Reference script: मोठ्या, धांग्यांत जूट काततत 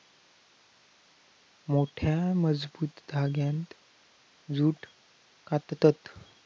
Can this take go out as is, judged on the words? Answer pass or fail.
fail